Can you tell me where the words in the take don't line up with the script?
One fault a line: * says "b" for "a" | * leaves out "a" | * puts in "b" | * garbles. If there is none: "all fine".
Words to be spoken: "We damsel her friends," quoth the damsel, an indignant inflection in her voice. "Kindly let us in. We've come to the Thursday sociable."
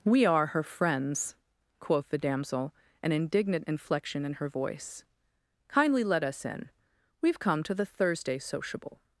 * says "are" for "damsel"